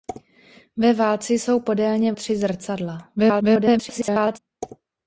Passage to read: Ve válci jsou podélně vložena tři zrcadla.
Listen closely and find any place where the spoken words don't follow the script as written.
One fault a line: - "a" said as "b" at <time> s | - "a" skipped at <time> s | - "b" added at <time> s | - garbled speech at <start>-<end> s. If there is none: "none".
- "vložena" skipped at 2.1 s
- garbled speech at 3.2-4.4 s